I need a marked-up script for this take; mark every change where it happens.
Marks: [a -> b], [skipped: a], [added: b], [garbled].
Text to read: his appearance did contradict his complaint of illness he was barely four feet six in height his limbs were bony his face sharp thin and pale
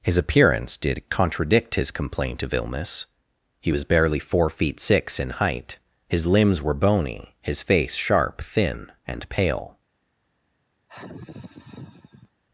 his appearance did contradict his complaint of illness he was barely four feet six in height his limbs were bony his face sharp thin and pale